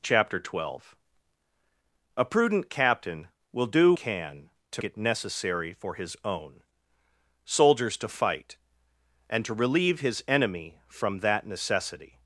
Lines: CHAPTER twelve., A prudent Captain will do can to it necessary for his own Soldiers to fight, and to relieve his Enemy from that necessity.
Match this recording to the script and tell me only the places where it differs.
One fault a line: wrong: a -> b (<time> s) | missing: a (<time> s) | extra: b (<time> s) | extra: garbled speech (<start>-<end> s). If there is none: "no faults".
no faults